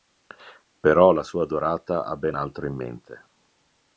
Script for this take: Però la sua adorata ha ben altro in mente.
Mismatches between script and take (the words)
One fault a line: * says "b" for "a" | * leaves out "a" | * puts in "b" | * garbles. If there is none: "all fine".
all fine